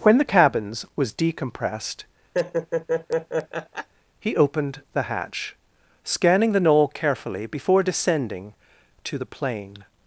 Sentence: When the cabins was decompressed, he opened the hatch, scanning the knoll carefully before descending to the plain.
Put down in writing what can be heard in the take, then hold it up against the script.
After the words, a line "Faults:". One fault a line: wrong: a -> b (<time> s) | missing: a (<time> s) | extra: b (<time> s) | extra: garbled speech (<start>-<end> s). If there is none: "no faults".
When the cabins was decompressed, he opened the hatch, scanning the knoll carefully before descending to the plain.
Faults:
no faults